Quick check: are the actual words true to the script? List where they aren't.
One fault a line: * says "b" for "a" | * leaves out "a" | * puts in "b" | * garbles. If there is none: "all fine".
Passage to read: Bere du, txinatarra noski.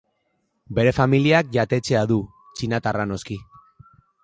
* puts in "familiak jatetxea"